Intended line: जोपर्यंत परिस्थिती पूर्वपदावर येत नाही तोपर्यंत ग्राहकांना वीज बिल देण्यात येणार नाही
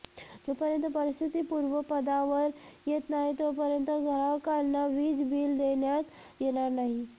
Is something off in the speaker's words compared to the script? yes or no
no